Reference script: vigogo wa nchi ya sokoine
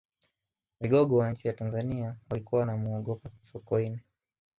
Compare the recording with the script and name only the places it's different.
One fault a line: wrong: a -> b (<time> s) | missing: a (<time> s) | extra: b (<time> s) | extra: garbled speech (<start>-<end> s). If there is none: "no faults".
extra: tanzania walikuwa wanamuogopa (1.5 s)